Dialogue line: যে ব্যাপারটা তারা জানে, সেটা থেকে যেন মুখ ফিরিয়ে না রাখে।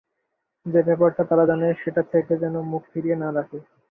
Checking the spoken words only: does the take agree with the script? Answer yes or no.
yes